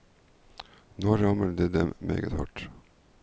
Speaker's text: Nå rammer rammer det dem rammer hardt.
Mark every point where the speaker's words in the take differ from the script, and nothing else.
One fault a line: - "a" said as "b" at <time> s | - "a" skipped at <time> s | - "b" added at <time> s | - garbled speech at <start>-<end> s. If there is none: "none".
- "rammer" skipped at 1.5 s
- "rammer" said as "meget" at 2.0 s